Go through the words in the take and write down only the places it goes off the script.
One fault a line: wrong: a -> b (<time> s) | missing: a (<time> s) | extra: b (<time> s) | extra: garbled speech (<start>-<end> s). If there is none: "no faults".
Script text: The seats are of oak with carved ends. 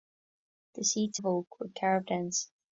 missing: are (1.2 s)